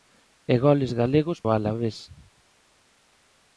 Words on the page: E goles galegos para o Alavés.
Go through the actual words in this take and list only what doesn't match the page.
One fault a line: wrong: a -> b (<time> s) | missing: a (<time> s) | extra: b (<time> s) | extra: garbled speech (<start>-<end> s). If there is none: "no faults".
missing: para (1.4 s)